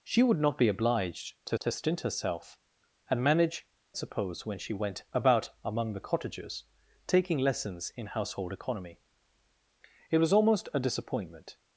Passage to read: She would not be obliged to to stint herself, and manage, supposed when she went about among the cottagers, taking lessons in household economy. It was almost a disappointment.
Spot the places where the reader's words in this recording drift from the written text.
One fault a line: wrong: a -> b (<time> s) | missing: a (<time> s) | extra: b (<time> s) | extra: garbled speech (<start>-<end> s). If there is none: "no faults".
no faults